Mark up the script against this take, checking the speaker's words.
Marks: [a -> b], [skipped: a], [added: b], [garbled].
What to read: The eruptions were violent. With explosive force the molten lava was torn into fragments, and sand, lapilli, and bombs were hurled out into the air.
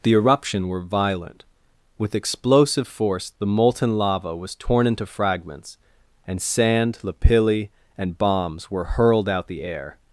The [eruptions -> eruption] were violent. With explosive force the molten lava was torn into fragments, and sand, lapilli, and bombs were hurled out [skipped: into] the air.